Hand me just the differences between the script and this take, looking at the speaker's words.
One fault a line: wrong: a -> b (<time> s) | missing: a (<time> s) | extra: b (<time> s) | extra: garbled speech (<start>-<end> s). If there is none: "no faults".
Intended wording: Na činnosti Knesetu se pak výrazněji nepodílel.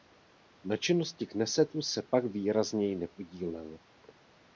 no faults